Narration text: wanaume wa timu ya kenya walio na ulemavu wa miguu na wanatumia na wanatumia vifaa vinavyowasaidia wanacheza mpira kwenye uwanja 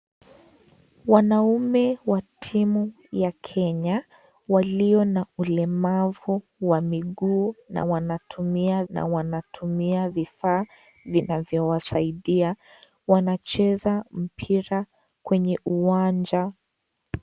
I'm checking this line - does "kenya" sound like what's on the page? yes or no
yes